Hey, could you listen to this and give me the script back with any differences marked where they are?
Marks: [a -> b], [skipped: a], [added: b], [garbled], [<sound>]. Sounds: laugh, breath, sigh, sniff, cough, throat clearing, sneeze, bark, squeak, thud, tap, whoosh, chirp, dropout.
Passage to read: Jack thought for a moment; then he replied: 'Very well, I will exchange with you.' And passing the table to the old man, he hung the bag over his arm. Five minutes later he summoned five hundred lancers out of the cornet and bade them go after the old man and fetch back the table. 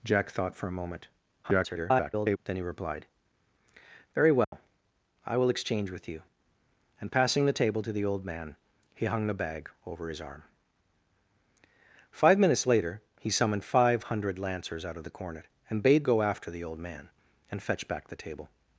Jack thought for a moment; [garbled] then he replied: 'Very well, [dropout] I will exchange with you.' And passing the table to the old man, he hung the bag over his arm. Five minutes later he summoned five hundred lancers out of the cornet and bade [skipped: them] go after the old man and fetch back the table.